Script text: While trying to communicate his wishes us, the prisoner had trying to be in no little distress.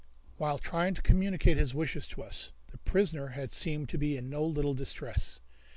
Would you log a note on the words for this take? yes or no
yes